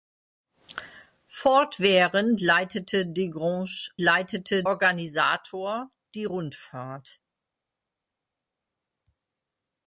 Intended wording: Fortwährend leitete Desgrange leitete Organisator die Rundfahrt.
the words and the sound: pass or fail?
pass